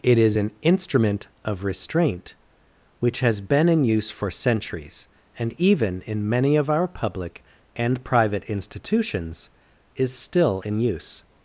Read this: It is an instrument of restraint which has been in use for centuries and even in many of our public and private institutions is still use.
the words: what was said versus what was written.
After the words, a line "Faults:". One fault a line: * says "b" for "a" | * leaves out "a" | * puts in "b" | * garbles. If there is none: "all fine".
It is an instrument of restraint which has been in use for centuries and even in many of our public and private institutions is still in use.
Faults:
* puts in "in"